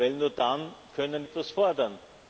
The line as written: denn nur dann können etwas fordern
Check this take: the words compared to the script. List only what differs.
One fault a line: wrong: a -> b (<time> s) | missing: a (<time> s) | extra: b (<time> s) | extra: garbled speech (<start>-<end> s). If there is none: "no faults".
no faults